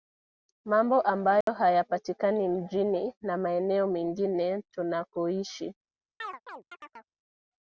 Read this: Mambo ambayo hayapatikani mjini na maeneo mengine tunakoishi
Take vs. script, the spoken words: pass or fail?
pass